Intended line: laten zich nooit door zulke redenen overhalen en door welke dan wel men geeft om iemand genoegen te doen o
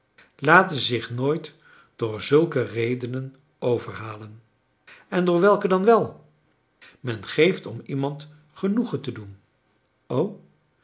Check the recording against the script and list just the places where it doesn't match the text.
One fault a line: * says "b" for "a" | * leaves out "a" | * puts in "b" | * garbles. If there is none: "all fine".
all fine